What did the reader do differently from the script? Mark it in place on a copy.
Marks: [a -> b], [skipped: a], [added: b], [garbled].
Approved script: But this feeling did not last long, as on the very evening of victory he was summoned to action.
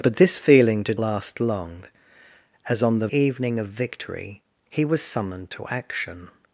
But this feeling did [skipped: not] last long, as on the [skipped: very] evening of victory he was summoned to action.